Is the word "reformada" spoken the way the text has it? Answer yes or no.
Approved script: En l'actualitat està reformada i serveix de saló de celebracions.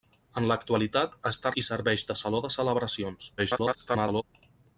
no